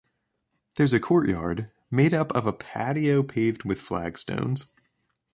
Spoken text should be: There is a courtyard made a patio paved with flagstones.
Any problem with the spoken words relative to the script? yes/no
yes